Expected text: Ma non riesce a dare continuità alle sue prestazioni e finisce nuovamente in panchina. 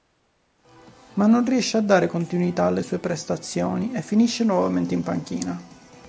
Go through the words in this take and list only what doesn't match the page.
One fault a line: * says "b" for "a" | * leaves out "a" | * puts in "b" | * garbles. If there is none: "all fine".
all fine